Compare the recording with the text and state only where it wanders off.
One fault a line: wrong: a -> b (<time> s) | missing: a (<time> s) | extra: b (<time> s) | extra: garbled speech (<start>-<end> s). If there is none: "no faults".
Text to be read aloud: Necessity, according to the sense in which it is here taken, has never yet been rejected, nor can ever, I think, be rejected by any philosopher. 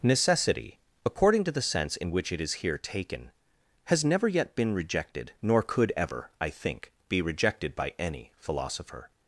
wrong: can -> could (5.6 s)